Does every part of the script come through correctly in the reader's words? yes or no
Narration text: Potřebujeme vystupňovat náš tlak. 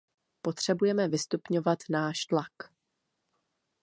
yes